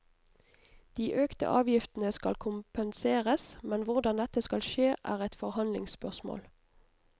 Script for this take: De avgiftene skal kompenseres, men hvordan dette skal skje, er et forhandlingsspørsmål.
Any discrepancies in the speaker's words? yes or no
yes